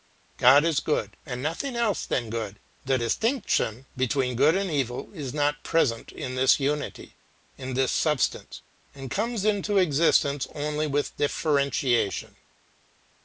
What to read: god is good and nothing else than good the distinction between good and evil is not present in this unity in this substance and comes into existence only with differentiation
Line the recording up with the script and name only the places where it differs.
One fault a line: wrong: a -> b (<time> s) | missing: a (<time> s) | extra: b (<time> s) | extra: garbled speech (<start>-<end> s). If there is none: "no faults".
no faults